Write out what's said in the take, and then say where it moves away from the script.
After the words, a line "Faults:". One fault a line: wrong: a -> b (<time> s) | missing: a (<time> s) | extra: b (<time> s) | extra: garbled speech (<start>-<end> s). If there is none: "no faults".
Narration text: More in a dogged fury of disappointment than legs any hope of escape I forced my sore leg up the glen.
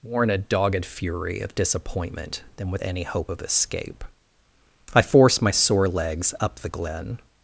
More in a dogged fury of disappointment than with any hope of escape I forced my sore legs up the glen.
Faults:
wrong: legs -> with (2.7 s)
wrong: leg -> legs (5.9 s)